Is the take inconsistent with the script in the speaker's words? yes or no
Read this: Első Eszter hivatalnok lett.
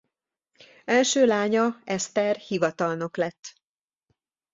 yes